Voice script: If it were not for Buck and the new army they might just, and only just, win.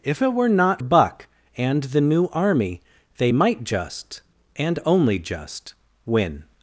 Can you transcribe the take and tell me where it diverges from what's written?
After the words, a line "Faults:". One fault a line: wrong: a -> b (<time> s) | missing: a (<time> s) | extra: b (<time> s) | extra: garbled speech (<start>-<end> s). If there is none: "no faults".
If it were not Buck and the new army they might just, and only just, win.
Faults:
missing: for (0.8 s)